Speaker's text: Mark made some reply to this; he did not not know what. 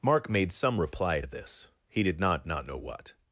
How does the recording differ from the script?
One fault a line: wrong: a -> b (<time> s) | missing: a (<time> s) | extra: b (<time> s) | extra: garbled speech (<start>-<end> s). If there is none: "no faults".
no faults